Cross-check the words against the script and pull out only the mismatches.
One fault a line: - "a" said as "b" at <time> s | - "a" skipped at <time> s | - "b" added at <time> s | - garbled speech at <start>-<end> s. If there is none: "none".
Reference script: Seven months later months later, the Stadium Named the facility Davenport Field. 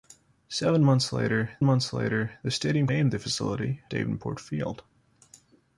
none